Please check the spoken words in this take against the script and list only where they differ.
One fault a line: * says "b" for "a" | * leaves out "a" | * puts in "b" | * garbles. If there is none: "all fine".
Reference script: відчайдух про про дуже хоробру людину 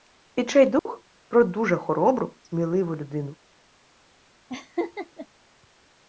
* leaves out "про"
* puts in "сміливу"